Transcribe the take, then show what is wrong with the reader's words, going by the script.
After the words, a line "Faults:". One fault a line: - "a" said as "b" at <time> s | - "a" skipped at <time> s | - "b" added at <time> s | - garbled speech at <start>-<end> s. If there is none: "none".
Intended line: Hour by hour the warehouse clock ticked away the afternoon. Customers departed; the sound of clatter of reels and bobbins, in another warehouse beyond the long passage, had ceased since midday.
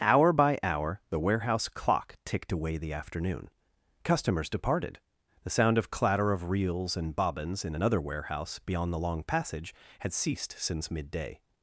Hour by hour the warehouse clock ticked away the afternoon. Customers departed; the sound of clatter of reels and bobbins, in another warehouse beyond the long passage, had ceased since midday.
Faults:
none